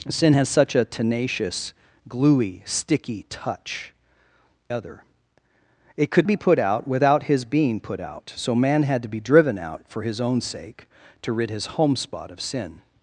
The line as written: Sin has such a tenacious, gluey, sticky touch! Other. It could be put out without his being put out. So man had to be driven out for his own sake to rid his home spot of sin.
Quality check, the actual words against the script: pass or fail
pass